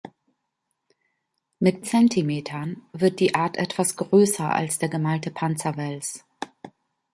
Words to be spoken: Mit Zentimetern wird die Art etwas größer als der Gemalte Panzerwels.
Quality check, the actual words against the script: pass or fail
pass